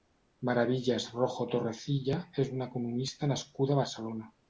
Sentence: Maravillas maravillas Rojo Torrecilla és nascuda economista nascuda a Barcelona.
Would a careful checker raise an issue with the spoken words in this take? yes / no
yes